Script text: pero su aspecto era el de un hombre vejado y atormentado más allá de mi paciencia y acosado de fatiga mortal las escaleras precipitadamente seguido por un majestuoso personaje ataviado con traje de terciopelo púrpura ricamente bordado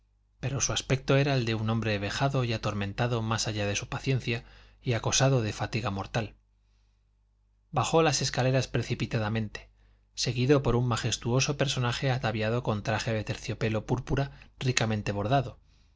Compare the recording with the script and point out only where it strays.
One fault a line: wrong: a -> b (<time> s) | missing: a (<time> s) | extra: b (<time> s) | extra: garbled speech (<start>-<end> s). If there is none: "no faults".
wrong: mi -> su (3.8 s)
extra: bajó (7.7 s)